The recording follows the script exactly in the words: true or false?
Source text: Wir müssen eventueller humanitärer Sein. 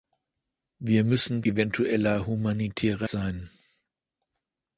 true